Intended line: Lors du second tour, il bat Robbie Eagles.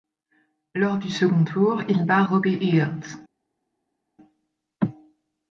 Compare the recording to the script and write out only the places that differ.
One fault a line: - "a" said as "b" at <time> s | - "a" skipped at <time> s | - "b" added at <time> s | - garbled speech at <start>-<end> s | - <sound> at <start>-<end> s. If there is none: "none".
none